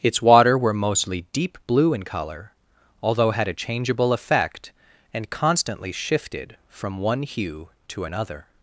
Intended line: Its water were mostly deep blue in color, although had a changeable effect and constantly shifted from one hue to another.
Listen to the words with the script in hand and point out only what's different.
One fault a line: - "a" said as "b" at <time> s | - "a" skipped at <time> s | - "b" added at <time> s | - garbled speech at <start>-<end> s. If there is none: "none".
none